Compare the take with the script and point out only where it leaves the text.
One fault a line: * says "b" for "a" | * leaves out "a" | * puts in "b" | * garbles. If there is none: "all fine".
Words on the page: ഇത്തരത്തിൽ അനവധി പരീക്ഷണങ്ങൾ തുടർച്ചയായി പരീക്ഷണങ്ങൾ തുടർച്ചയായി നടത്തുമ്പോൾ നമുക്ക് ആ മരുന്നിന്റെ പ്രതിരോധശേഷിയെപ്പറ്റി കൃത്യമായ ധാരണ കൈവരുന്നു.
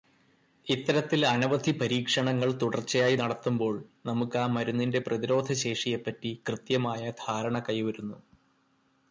* leaves out "പരീക്ഷണങ്ങൾ തുടർച്ചയായി"